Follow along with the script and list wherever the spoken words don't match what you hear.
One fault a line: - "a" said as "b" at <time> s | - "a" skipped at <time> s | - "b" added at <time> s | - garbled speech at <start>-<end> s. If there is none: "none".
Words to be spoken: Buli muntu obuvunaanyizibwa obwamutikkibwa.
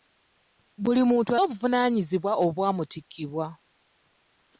none